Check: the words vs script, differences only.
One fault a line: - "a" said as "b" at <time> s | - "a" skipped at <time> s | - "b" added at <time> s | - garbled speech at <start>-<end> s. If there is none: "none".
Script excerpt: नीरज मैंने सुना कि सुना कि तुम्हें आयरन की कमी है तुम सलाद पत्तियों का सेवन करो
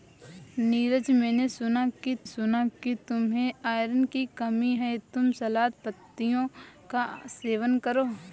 none